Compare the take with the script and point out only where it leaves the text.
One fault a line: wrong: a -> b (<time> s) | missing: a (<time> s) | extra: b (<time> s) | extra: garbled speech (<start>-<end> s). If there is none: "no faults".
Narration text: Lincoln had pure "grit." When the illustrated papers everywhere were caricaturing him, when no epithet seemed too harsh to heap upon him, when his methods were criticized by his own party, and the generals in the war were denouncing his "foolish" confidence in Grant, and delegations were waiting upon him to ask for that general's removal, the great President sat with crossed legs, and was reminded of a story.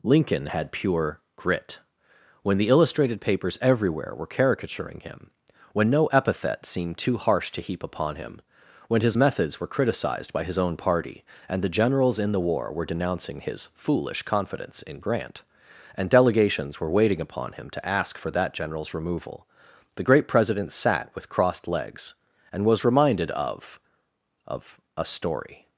extra: of (24.5 s)